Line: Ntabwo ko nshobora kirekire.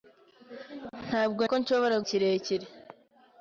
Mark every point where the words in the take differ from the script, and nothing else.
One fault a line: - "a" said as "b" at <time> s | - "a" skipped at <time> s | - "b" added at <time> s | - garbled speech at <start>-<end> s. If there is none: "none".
none